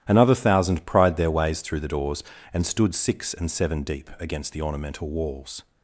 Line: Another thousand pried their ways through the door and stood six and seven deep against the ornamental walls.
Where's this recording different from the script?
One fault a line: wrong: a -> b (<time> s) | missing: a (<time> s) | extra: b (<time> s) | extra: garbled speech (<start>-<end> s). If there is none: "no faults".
wrong: door -> doors (1.9 s)